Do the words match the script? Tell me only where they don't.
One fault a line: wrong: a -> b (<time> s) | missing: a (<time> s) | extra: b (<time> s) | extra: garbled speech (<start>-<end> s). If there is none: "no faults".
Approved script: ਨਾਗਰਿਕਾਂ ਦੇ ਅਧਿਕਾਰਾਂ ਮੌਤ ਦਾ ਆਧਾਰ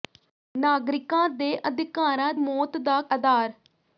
no faults